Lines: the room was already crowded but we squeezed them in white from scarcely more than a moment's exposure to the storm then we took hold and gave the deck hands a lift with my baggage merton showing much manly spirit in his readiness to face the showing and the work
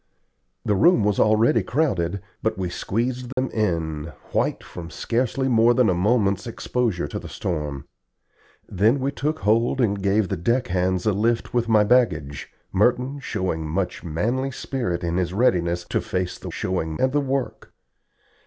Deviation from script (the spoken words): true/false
false